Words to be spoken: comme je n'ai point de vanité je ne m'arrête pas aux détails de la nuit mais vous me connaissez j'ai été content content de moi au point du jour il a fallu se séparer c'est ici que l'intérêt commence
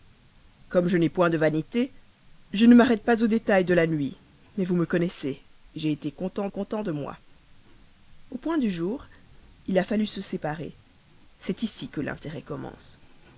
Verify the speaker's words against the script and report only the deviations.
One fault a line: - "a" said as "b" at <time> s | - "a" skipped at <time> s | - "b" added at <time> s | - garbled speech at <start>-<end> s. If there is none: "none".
none